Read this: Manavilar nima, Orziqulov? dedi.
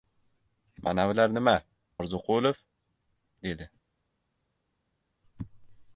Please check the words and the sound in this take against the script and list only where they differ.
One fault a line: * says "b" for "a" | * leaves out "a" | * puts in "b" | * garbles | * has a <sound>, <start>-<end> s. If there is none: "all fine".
all fine